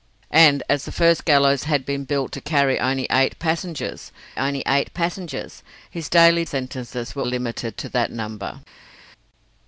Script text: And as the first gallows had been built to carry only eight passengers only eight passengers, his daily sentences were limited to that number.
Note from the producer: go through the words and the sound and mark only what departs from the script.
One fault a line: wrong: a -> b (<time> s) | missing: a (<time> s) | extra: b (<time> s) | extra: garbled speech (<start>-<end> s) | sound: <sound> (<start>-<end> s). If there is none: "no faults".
no faults